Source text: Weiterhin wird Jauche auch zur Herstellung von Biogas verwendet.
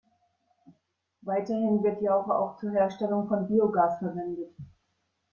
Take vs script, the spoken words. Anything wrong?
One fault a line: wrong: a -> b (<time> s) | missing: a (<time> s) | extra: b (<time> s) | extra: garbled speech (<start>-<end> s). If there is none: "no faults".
no faults